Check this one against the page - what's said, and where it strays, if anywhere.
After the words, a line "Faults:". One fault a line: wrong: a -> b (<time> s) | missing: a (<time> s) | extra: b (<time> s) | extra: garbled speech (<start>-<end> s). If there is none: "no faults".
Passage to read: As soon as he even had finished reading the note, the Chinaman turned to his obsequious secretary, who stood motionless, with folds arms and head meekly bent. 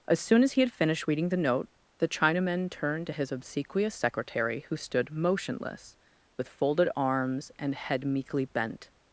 As soon as he had finished reading the note, the Chinaman turned to his obsequious secretary, who stood motionless, with folded arms and head meekly bent.
Faults:
missing: even (0.6 s)
wrong: folds -> folded (6.5 s)